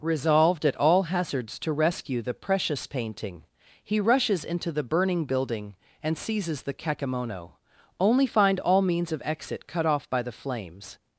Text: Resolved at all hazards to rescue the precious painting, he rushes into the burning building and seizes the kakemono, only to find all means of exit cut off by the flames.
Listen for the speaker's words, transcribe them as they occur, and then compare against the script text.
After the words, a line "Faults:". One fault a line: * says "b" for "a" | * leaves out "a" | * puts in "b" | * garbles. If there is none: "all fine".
Resolved at all hazards to rescue the precious painting, he rushes into the burning building and seizes the kakemono, only find all means of exit cut off by the flames.
Faults:
* leaves out "to"